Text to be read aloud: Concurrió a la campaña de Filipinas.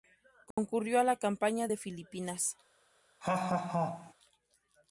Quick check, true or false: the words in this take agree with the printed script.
true